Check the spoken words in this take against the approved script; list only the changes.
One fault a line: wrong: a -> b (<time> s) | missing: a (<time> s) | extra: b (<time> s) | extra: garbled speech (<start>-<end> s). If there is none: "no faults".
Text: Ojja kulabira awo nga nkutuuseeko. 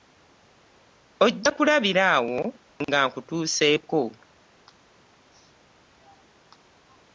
no faults